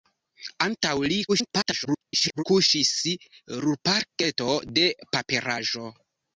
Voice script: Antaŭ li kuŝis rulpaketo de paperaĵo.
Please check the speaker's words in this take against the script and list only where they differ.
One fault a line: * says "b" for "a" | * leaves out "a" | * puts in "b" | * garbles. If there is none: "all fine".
* garbles